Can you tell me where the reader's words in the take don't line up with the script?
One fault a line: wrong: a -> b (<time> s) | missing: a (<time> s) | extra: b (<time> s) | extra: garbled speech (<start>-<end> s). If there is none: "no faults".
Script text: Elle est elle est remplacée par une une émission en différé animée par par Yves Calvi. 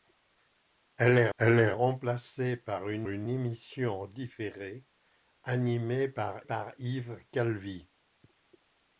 no faults